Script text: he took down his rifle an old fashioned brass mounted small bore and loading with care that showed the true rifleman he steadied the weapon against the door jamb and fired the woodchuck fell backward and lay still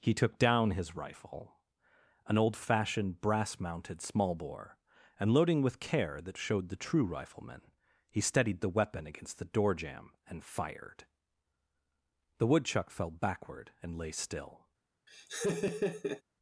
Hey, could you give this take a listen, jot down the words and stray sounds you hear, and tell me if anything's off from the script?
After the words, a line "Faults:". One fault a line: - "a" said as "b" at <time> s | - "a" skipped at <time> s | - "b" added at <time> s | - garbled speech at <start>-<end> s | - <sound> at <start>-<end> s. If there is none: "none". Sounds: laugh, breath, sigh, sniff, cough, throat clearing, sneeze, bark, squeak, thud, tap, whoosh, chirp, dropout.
he took down his rifle an old fashioned brass mounted small bore and loading with care that showed the true rifleman he steadied the weapon against the door jamb and fired the woodchuck fell backward and lay still
Faults:
- laugh at 15.1-16.2 s